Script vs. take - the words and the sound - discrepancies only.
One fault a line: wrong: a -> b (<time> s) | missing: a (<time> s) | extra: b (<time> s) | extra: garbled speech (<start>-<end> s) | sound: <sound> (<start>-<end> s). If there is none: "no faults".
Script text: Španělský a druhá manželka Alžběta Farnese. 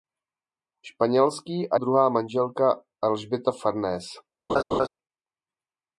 sound: laugh (4.5-4.9 s)